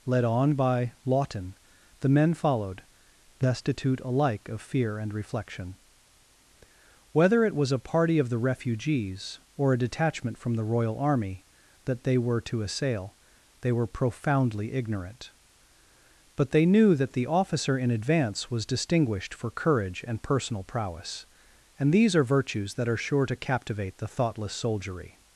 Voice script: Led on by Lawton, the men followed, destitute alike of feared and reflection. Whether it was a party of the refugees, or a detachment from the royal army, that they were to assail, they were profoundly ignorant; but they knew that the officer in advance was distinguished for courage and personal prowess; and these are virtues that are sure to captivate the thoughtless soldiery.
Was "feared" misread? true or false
true